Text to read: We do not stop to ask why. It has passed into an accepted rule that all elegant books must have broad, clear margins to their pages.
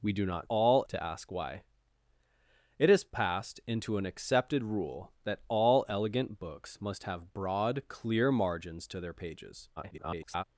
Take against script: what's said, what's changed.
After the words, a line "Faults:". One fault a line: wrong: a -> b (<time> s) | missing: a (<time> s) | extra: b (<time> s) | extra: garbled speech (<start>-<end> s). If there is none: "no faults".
We do not all to ask why. It has passed into an accepted rule that all elegant books must have broad, clear margins to their pages. [garbled]
Faults:
wrong: stop -> all (0.5 s)
extra: garbled speech (9.8-10.4 s)